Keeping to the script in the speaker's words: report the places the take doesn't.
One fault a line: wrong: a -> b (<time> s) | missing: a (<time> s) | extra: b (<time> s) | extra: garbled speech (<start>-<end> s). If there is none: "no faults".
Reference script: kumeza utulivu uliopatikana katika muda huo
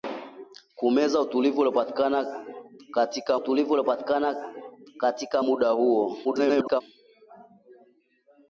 extra: utulivu uliopatikana katika (3.4 s)
extra: garbled speech (6.2-6.8 s)